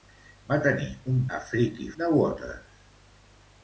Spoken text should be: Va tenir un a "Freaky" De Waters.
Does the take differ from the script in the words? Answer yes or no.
no